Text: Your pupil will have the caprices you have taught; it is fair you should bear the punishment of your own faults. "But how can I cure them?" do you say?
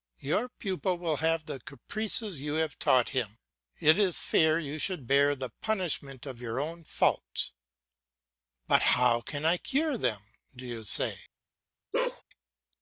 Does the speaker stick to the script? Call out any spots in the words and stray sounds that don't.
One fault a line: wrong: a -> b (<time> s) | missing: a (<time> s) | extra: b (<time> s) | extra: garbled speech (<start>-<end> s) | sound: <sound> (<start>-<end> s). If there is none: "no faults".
extra: him (3.1 s)
sound: bark (11.9-12.2 s)